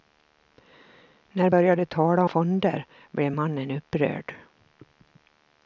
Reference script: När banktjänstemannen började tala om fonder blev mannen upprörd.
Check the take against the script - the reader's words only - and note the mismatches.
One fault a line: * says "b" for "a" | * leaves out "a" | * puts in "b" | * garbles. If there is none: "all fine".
* leaves out "banktjänstemannen"
* leaves out "om"